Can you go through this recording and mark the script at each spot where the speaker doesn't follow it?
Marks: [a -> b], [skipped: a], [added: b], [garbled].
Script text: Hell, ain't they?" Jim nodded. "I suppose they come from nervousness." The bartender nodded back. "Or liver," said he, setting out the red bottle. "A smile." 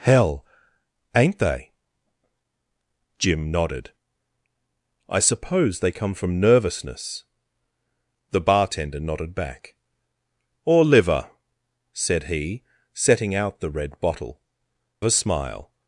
Hell, ain't they?" Jim nodded. "I suppose they come from nervousness." The bartender nodded back. "Or liver," said he, setting out the red bottle. "A smile."